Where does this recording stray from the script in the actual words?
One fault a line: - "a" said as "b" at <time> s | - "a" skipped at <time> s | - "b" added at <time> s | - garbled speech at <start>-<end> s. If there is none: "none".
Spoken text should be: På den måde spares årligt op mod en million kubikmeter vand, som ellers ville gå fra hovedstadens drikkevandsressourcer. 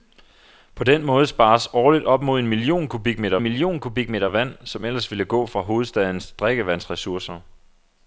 - "million kubikmeter" added at 3.4 s